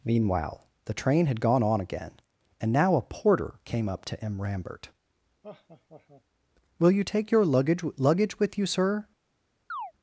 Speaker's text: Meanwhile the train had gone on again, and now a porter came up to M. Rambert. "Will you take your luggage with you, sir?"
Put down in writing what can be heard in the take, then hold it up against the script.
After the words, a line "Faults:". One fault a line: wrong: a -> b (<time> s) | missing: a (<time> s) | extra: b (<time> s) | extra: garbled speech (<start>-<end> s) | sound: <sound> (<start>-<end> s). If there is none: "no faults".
Meanwhile the train had gone on again, and now a porter came up to M. Rambert. "Will you take your luggage luggage with you, sir?"
Faults:
sound: laugh (5.4-6.2 s)
extra: luggage (8.0 s)
sound: chirp (9.7-9.9 s)